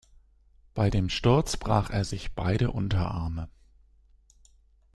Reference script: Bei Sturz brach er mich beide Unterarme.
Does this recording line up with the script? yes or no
no